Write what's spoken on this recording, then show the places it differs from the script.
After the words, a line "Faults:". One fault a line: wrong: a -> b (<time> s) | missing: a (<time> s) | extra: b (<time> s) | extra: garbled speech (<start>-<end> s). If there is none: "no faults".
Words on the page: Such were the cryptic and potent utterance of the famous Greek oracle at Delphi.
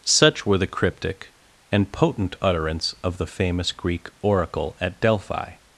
Such were the cryptic and potent utterance of the famous Greek oracle at Delphi.
Faults:
no faults